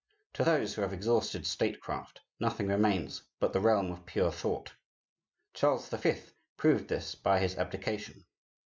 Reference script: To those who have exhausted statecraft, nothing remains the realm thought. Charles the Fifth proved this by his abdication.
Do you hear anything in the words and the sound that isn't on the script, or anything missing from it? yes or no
yes